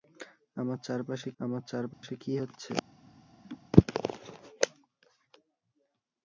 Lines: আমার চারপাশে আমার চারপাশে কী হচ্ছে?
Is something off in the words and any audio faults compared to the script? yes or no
yes